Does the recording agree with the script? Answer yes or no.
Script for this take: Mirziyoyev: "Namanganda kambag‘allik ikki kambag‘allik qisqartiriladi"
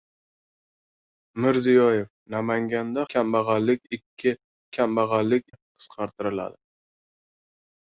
yes